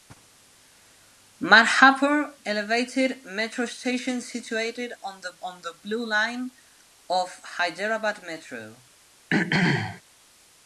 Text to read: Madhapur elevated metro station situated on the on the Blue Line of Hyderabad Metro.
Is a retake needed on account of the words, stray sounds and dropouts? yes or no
yes